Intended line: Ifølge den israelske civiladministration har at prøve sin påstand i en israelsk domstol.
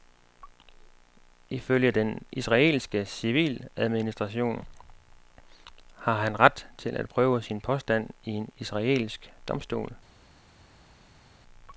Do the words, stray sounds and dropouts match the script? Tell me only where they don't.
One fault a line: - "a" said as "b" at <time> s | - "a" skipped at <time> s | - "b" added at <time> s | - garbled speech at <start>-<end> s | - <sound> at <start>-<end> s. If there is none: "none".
- "han ret til" added at 6.1 s